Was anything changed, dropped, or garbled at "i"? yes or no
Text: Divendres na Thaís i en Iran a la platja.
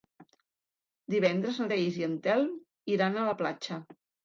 no